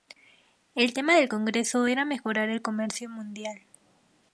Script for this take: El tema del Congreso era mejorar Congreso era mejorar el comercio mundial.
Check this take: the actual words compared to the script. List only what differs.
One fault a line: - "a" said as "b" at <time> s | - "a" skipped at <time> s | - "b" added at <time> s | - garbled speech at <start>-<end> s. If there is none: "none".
- "Congreso era mejorar" skipped at 2.5 s